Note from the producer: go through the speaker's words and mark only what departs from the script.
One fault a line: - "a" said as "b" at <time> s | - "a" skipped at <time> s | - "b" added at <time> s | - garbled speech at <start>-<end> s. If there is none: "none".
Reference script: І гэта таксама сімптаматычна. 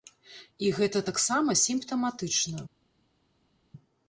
none